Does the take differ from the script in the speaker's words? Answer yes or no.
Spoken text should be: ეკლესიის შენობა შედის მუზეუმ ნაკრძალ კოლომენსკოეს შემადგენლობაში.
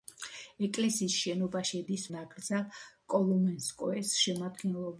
yes